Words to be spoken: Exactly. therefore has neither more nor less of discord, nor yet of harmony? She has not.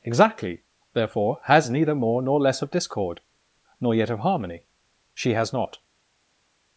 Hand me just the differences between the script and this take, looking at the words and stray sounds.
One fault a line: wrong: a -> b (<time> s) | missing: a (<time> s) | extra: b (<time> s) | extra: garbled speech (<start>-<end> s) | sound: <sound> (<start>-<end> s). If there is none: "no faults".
no faults